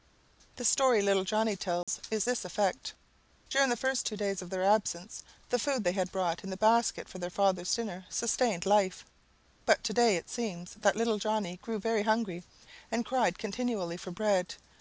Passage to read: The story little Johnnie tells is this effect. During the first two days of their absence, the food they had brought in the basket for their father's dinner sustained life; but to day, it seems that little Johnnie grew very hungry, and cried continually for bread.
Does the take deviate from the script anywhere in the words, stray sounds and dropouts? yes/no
yes